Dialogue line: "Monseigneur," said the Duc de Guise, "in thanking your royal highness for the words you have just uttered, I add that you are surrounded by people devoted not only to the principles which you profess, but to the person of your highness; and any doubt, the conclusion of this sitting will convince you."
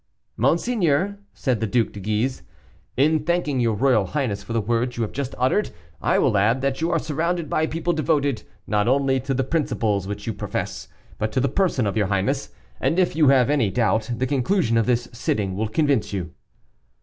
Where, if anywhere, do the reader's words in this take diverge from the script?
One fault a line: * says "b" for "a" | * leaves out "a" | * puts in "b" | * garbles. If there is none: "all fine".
* puts in "will"
* puts in "if you have"